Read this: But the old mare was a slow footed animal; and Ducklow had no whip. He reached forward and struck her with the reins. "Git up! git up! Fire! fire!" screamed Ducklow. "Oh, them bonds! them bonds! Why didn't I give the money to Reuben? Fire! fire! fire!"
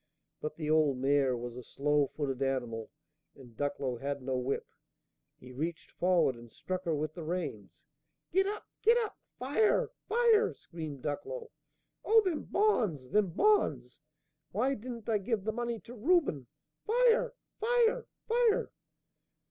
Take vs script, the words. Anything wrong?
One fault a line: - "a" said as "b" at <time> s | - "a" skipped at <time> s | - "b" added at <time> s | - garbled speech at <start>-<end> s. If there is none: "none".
none